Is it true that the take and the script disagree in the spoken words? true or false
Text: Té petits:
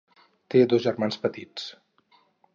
true